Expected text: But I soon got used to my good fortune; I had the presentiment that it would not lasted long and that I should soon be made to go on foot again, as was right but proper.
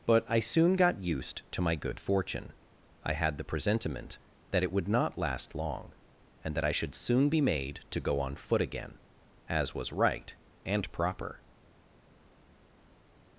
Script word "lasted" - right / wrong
wrong